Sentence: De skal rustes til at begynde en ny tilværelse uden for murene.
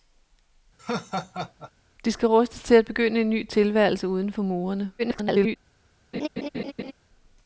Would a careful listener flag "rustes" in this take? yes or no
no